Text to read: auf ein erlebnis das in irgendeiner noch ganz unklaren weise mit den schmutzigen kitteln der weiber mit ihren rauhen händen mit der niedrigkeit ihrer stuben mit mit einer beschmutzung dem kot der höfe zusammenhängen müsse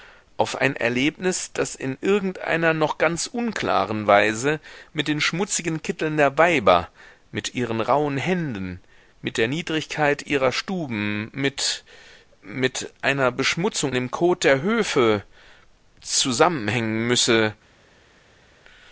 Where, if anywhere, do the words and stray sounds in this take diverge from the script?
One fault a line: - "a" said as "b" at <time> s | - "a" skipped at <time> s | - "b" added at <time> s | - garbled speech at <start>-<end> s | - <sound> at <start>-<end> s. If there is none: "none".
none